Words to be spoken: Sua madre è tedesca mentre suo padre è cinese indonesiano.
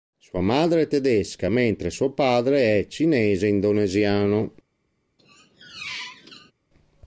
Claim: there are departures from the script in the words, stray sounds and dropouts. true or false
true